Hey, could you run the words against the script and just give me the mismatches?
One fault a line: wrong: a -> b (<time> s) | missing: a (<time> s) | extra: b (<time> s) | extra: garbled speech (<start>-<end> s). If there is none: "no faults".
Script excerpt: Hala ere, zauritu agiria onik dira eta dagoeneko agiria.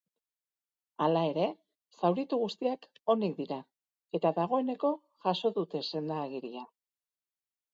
wrong: agiria -> guztiak (2.5 s)
extra: jaso dute senda (5.3 s)